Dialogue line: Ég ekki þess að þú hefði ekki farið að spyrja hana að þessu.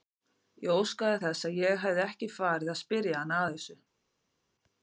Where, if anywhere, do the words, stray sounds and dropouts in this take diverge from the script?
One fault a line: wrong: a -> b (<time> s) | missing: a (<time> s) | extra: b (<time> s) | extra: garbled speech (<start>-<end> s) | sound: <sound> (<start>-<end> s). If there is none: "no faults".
wrong: ekki -> óskaði (0.8 s)
wrong: þú -> ég (1.6 s)